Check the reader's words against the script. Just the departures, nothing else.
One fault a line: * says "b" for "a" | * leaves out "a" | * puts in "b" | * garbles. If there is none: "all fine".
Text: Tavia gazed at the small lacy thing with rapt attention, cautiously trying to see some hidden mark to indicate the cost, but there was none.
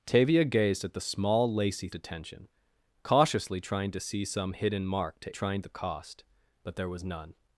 * leaves out "thing with rapt"
* says "trying" for "indicate"